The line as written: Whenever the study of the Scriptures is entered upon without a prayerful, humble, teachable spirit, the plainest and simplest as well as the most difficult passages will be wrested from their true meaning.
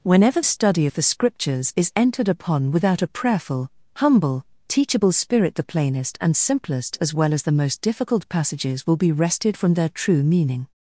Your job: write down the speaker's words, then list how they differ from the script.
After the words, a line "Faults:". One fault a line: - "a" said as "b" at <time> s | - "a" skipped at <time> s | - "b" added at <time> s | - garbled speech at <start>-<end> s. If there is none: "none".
Whenever study of the Scriptures is entered upon without a prayerful, humble, teachable spirit, the plainest and simplest as well as the most difficult passages will be wrested from their true meaning.
Faults:
- "the" skipped at 0.4 s